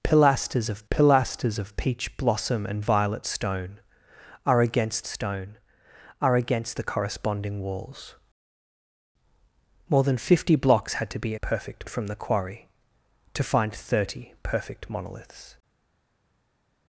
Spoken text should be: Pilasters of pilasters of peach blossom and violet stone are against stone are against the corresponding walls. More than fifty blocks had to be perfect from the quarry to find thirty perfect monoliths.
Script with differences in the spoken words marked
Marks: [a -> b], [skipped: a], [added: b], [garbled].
Pilasters of pilasters of peach blossom and violet stone are against stone are against the corresponding walls. More than fifty blocks had to be perfect from the quarry to find thirty perfect monoliths.